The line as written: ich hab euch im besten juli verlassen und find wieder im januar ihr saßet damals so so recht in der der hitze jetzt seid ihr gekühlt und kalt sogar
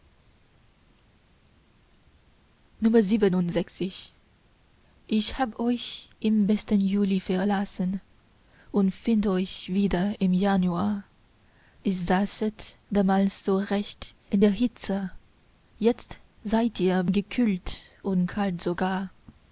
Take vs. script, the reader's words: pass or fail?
fail